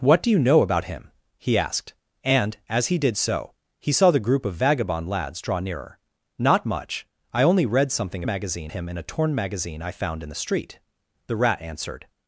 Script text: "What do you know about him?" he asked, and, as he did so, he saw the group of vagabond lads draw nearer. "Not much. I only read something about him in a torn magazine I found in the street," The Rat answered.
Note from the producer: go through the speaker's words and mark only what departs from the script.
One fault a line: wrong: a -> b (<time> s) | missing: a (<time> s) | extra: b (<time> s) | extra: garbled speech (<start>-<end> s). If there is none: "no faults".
wrong: about -> magazine (8.3 s)